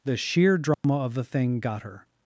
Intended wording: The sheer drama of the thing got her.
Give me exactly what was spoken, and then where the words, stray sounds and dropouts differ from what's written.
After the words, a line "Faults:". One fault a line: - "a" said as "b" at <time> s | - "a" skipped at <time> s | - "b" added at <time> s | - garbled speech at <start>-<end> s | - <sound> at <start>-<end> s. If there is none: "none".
The sheer drama of the thing got her.
Faults:
- dropout at 0.7-0.8 s